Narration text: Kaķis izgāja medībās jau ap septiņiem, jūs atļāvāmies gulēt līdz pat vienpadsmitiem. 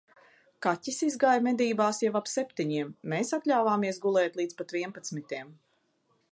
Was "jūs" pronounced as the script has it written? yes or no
no